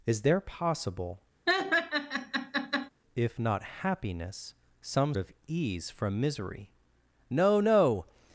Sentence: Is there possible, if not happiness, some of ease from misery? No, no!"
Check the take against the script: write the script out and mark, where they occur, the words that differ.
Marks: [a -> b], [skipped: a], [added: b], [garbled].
Is there possible, if not happiness, some of ease from misery? No, no!"